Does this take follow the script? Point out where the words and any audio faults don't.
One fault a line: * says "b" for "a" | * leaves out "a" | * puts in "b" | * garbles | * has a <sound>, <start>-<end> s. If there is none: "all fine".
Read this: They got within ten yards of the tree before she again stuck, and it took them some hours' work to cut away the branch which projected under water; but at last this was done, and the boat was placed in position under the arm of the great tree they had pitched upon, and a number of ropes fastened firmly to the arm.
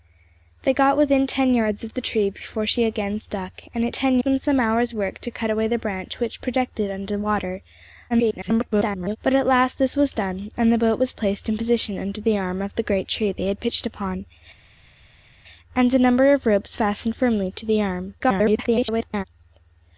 * says "ten" for "took"
* garbles
* garbles